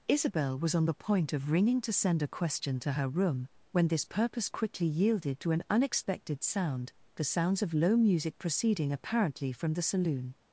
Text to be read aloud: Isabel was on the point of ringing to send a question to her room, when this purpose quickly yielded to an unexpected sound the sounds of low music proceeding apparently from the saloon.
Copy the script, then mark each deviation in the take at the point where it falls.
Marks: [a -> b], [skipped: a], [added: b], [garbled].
Isabel was on the point of ringing to send a question to her room, when this purpose quickly yielded to an unexpected sound the sounds of low music proceeding apparently from the saloon.